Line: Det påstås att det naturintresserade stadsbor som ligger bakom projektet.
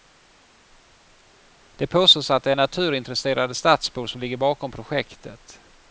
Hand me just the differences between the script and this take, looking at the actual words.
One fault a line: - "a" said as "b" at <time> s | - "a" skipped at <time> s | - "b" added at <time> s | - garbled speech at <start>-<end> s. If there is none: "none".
none